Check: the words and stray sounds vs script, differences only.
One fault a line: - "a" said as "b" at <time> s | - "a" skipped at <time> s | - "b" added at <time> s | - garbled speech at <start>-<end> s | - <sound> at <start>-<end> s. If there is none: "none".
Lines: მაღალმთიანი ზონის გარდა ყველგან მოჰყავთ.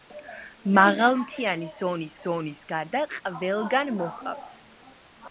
- "ზონის" added at 2.2 s